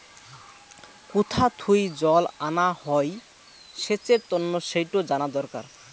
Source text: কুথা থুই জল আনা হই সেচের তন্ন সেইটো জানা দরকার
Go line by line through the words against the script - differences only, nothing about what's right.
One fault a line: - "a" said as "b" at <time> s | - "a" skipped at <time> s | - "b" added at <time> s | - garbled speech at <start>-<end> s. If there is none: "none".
none